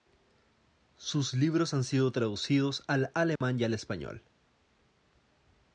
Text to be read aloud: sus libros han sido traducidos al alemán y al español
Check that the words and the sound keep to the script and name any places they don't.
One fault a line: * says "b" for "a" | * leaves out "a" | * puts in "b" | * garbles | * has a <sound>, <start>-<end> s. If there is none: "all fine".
* has a dropout, 3.4-3.4 s